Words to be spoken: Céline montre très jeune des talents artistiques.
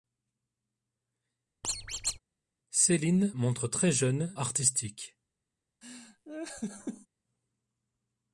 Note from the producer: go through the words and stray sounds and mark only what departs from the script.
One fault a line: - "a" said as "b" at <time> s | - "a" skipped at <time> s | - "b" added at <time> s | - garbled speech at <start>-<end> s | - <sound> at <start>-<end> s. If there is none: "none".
- squeak at 1.6-2.2 s
- "des talents" skipped at 4.3 s
- laugh at 5.8-7.1 s